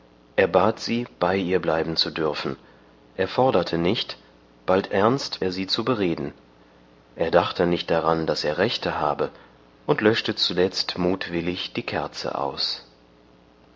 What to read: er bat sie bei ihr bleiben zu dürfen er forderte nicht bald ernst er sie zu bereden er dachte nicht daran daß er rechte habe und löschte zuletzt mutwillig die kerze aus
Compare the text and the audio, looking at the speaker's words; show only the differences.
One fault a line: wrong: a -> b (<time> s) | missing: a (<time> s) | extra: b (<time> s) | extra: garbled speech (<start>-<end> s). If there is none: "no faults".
no faults